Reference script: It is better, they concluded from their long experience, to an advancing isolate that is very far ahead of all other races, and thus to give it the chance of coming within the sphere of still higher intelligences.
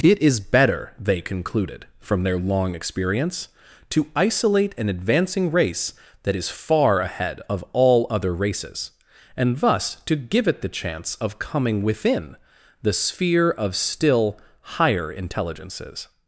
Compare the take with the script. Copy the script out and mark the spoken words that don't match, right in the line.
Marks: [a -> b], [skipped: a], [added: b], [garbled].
It is better, they concluded from their long experience, to [added: isolate] an advancing [isolate -> race] that is [skipped: very] far ahead of all other races, and thus to give it the chance of coming within the sphere of still higher intelligences.